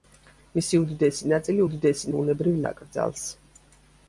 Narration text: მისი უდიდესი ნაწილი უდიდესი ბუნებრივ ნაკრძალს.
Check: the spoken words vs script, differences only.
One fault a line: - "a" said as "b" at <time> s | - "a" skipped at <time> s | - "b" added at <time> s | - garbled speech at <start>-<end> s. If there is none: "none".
none